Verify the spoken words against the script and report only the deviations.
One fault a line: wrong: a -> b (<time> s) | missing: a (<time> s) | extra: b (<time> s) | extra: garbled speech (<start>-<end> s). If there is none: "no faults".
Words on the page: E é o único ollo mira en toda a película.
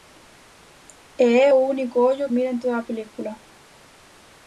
no faults